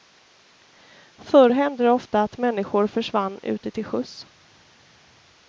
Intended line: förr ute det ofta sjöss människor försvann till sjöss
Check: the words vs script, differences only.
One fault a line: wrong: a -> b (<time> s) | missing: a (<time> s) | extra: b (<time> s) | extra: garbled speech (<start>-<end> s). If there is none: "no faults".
wrong: ute -> hände (1.5 s)
wrong: sjöss -> att (2.2 s)
extra: ute (3.4 s)